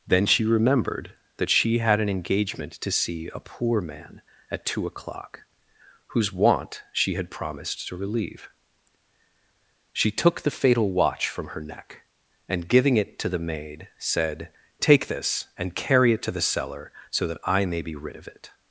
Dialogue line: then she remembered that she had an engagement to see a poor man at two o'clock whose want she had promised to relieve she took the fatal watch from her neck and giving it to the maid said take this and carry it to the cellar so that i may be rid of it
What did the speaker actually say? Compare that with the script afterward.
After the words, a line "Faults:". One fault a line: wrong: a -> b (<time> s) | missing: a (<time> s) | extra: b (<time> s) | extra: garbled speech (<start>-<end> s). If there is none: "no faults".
then she remembered that she had an engagement to see a poor man at two o'clock whose want she had promised to relieve she took the fatal watch from her neck and giving it to the maid said take this and carry it to the cellar so that i may be rid of it
Faults:
no faults